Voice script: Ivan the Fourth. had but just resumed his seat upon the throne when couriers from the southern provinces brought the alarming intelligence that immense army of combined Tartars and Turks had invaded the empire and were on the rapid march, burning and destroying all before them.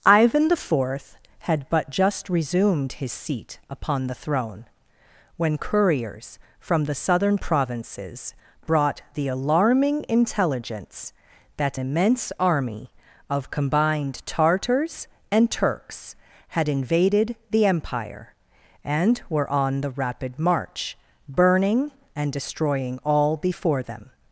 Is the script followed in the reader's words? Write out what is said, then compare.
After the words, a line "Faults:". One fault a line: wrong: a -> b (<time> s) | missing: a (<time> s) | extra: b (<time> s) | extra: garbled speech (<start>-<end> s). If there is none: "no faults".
Ivan the Fourth. had but just resumed his seat upon the throne when couriers from the southern provinces brought the alarming intelligence that immense army of combined Tartars and Turks had invaded the empire and were on the rapid march, burning and destroying all before them.
Faults:
no faults